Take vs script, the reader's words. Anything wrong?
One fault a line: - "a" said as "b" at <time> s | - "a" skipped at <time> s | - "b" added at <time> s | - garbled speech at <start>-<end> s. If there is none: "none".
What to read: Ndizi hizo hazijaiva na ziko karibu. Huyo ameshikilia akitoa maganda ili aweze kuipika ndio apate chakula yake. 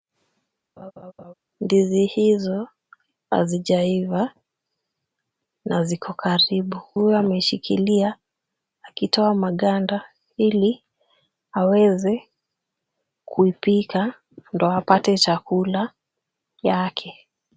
none